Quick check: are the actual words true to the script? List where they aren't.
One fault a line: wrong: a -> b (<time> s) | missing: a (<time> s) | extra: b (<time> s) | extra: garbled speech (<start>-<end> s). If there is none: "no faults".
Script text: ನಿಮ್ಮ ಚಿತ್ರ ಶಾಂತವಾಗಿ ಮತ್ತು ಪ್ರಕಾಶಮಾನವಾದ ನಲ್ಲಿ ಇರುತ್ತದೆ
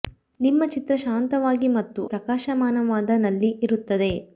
no faults